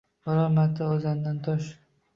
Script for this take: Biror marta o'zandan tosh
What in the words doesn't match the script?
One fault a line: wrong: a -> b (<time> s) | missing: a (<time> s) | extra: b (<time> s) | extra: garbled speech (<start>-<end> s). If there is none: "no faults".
no faults